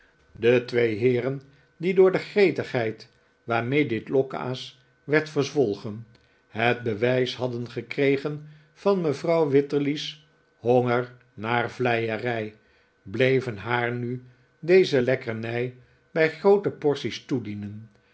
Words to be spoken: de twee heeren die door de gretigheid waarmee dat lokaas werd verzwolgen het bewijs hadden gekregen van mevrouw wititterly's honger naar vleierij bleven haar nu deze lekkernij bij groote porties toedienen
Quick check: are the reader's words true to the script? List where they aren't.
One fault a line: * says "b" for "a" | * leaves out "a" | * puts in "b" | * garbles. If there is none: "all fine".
* says "dit" for "dat"